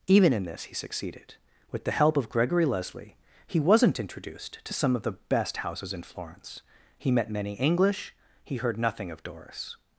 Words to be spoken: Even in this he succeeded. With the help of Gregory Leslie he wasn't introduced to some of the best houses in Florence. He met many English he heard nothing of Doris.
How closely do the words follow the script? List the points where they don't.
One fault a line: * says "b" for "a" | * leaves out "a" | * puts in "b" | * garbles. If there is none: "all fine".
all fine